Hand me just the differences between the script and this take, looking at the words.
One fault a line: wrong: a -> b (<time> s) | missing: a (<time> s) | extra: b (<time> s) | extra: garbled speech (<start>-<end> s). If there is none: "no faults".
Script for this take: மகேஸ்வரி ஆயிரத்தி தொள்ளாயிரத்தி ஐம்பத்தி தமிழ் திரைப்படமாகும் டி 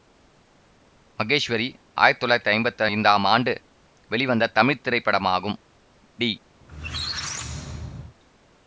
extra: ஐந்தாம் ஆண்டு வெளிவந்த (2.9 s)